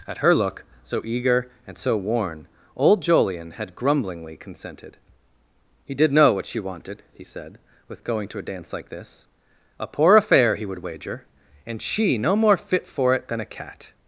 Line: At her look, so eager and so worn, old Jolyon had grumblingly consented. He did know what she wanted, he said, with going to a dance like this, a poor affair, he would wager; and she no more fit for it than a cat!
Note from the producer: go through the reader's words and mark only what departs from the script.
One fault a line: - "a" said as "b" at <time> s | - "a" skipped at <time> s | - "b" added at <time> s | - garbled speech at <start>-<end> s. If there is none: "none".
none